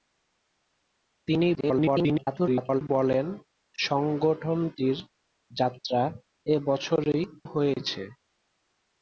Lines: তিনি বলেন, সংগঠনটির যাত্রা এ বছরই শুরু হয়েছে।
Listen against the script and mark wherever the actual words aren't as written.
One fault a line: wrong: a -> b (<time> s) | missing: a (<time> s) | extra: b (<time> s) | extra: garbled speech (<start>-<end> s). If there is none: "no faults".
extra: garbled speech (1.6-2.8 s)
missing: শুরু (7.2 s)